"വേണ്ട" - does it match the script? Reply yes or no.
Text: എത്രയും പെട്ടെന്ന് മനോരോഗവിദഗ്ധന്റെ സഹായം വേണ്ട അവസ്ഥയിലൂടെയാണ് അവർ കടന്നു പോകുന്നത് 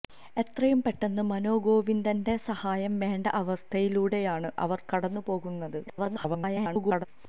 yes